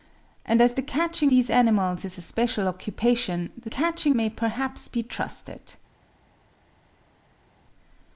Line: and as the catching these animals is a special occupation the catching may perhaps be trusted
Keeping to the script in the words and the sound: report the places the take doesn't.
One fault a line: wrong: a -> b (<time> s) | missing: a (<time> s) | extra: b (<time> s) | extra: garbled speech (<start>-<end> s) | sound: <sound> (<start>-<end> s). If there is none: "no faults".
no faults